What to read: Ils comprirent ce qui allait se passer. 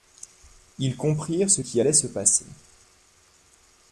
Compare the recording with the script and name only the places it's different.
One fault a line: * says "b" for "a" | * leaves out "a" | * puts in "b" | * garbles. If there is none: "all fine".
all fine